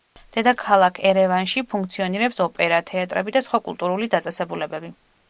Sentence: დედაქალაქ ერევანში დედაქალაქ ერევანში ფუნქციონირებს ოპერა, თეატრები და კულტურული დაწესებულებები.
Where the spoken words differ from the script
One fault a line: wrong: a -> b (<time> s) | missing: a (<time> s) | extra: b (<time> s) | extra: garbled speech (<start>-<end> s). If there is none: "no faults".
missing: დედაქალაქ ერევანში (1.6 s)
extra: სხვა (3.5 s)